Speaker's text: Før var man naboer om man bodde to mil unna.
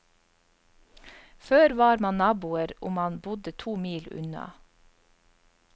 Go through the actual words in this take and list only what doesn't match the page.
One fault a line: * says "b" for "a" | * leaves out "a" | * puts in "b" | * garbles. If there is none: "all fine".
all fine